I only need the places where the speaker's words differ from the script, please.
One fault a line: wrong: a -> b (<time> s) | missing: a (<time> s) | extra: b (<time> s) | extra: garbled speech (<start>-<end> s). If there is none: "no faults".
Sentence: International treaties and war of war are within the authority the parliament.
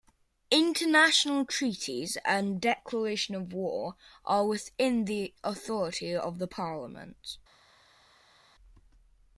wrong: war -> declaration (2.6 s)
extra: of (6.2 s)